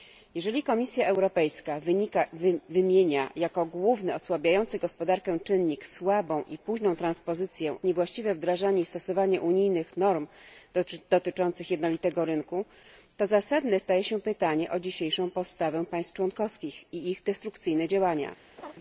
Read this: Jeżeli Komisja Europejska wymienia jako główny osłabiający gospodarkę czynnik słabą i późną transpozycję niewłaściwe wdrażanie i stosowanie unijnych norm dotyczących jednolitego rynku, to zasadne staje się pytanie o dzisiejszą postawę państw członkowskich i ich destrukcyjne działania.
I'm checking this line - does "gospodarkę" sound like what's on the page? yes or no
yes